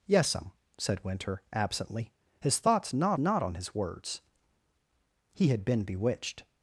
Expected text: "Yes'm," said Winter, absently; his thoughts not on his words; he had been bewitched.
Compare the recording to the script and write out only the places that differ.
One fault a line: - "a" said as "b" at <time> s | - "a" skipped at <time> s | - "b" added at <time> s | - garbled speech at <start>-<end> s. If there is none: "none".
- "not" added at 3.2 s